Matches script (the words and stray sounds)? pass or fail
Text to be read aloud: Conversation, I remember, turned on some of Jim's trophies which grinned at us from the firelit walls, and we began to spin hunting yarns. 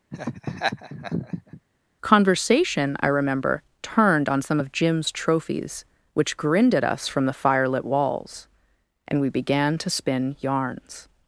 fail